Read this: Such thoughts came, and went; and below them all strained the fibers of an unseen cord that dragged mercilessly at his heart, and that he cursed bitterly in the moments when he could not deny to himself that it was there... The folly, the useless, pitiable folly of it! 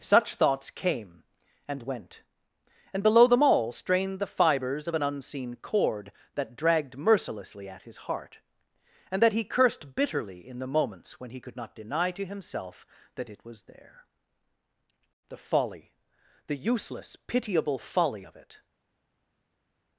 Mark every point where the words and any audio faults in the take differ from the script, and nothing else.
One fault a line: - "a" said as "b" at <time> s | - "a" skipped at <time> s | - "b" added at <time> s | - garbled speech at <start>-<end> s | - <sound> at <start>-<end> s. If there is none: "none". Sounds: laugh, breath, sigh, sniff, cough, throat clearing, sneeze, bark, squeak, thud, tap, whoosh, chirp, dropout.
none